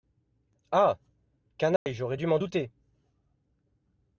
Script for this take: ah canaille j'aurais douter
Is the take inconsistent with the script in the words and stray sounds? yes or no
yes